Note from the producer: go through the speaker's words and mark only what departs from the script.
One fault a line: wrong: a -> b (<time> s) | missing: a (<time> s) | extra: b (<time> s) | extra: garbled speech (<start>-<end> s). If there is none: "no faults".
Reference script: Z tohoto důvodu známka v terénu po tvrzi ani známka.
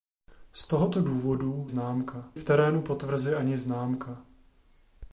no faults